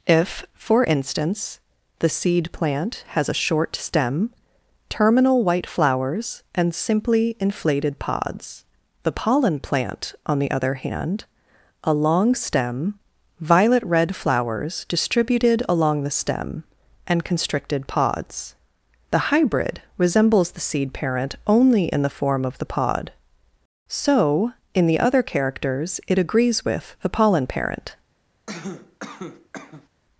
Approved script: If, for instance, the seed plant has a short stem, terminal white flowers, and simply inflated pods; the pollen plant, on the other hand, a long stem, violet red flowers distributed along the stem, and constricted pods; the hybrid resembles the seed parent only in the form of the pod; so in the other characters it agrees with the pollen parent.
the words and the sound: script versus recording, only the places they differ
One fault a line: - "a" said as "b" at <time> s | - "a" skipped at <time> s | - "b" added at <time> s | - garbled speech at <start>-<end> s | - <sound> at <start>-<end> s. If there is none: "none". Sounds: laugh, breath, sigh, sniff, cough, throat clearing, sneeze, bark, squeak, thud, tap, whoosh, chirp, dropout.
- cough at 28.5-29.9 s